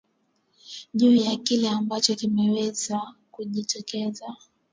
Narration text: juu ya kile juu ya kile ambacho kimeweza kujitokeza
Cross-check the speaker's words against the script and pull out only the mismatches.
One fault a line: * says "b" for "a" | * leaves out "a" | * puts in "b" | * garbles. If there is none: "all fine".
* leaves out "juu ya kile"